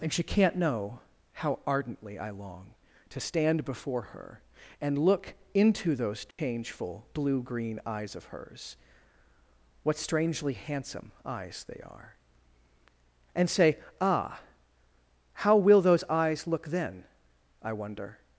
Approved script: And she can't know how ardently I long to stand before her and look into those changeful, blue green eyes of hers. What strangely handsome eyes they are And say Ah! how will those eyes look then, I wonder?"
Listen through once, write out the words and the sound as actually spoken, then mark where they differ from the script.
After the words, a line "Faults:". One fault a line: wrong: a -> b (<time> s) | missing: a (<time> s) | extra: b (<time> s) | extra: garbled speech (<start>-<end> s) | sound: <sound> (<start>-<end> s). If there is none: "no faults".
And she can't know how ardently I long to stand before her and look into those changeful, blue green eyes of hers. What strangely handsome eyes they are And say Ah! how will those eyes look then, I wonder?"
Faults:
sound: dropout (6.3-6.4 s)